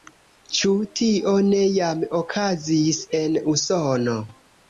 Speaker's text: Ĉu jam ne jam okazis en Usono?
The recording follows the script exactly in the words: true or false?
false